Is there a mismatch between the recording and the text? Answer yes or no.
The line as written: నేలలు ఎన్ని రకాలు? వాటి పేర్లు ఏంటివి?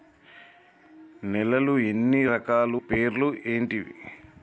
yes